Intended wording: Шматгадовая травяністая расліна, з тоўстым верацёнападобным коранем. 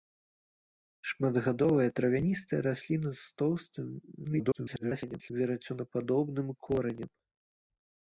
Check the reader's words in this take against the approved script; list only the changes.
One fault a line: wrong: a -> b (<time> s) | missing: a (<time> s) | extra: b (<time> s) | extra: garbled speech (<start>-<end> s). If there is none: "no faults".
extra: garbled speech (4.2-5.3 s)